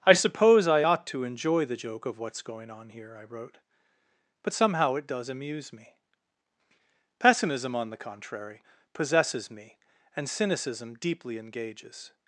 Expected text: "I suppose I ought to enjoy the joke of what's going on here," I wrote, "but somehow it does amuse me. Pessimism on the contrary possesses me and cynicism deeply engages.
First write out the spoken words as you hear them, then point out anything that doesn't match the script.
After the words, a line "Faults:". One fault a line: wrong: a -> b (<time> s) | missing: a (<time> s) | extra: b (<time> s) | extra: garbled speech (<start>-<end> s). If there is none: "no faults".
"I suppose I ought to enjoy the joke of what's going on here," I wrote, "but somehow it does amuse me. Pessimism on the contrary possesses me and cynicism deeply engages.
Faults:
no faults